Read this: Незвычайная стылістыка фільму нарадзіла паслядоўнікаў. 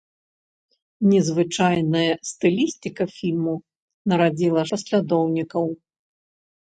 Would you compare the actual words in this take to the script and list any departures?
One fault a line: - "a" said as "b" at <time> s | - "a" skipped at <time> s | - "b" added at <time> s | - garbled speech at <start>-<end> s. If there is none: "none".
none